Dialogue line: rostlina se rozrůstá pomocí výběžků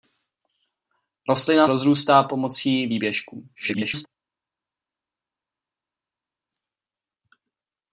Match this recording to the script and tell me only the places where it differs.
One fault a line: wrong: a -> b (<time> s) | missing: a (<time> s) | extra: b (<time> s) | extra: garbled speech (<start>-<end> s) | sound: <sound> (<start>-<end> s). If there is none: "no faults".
missing: se (1.7 s)
extra: garbled speech (3.5-4.1 s)